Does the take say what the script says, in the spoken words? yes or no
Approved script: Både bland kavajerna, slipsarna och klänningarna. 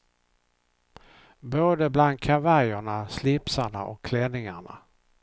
yes